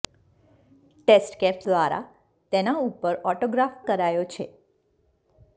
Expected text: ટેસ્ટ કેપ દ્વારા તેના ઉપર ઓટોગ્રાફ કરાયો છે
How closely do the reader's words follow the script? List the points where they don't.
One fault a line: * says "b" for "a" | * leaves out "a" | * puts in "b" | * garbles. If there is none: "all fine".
all fine